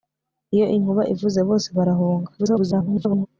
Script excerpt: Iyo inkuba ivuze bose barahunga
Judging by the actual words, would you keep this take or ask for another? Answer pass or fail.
fail